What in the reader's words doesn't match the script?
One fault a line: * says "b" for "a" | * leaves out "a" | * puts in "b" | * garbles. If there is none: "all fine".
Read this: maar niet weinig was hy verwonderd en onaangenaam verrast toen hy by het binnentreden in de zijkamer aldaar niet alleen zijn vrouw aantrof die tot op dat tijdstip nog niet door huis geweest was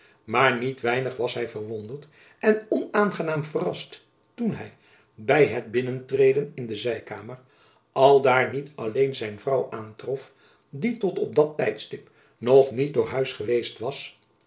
all fine